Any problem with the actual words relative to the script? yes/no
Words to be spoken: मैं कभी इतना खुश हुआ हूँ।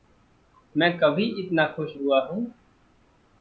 no